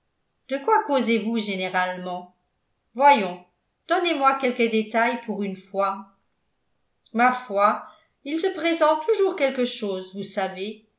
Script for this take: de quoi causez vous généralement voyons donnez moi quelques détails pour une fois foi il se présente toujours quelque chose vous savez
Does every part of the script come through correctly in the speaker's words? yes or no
no